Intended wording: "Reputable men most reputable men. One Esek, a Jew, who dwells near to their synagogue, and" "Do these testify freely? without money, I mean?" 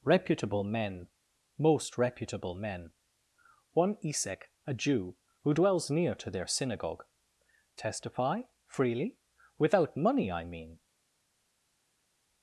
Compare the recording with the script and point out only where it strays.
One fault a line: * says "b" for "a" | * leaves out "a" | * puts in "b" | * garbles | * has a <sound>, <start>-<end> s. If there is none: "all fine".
* leaves out "and Do these"